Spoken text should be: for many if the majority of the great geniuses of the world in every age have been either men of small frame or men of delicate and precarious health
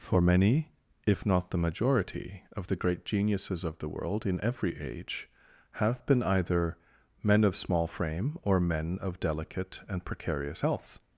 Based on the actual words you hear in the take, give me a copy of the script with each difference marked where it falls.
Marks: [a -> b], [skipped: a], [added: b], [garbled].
for many if [added: not] the majority of the great geniuses of the world in every age have been either men of small frame or men of delicate and precarious health